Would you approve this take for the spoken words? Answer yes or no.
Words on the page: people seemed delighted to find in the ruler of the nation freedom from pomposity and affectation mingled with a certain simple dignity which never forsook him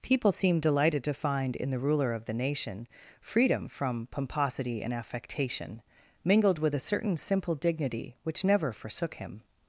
yes